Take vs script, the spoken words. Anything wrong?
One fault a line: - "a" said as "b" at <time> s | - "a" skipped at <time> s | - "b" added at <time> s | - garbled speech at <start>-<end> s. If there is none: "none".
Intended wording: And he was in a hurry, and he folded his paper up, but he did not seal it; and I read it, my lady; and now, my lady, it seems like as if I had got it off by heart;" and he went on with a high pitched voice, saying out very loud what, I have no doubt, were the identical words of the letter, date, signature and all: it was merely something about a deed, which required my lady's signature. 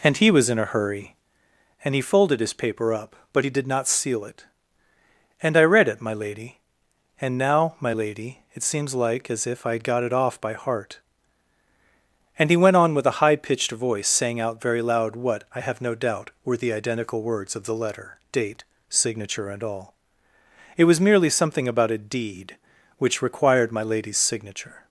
none